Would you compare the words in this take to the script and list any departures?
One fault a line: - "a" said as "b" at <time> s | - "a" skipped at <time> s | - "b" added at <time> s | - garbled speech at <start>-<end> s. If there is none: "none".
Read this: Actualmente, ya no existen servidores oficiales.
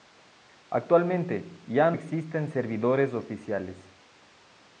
- "no" skipped at 1.9 s